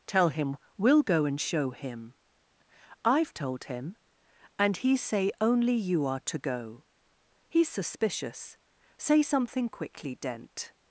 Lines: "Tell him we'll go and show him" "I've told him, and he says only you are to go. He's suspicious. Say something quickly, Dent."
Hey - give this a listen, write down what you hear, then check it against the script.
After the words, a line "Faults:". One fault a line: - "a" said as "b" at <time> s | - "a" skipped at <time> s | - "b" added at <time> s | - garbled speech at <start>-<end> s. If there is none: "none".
"Tell him we'll go and show him" "I've told him, and he say only you are to go. He's suspicious. Say something quickly, Dent."
Faults:
- "says" said as "say" at 5.0 s